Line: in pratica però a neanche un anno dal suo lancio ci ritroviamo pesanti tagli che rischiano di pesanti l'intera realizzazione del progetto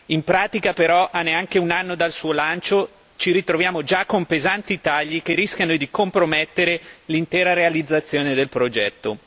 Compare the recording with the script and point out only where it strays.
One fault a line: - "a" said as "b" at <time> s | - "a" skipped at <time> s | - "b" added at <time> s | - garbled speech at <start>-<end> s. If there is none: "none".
- "già con" added at 3.8 s
- "pesanti" said as "compromettere" at 5.9 s